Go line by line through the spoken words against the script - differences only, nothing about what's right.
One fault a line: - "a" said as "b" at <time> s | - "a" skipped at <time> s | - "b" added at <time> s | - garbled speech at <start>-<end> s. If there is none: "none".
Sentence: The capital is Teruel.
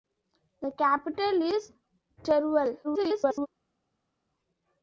- garbled speech at 2.8-3.5 s